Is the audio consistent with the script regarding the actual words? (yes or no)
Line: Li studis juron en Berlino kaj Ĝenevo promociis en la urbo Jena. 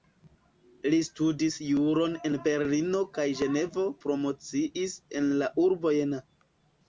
yes